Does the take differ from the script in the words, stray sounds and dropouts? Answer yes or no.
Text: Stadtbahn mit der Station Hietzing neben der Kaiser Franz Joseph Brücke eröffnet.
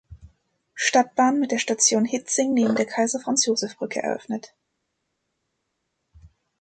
no